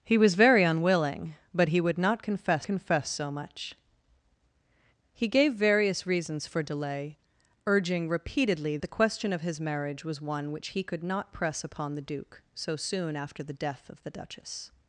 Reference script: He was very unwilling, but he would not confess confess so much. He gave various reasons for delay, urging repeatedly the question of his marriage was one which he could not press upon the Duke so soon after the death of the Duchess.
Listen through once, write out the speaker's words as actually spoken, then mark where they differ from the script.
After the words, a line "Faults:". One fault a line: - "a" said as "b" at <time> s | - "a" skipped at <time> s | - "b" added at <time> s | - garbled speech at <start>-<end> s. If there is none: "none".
He was very unwilling, but he would not confess confess so much. He gave various reasons for delay, urging repeatedly the question of his marriage was one which he could not press upon the Duke so soon after the death of the Duchess.
Faults:
none